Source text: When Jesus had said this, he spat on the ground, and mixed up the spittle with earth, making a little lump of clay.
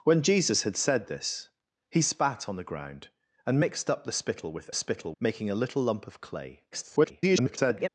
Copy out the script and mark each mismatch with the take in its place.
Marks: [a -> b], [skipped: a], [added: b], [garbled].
When Jesus had said this, he spat on the ground, and mixed up the spittle with [earth, -> spittle] making a little lump of clay. [garbled]